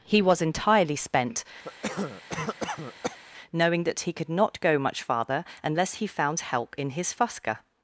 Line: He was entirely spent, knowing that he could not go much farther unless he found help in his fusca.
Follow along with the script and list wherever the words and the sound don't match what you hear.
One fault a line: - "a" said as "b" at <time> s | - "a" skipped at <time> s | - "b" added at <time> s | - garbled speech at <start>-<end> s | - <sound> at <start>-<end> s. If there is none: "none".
- cough at 1.6-3.2 s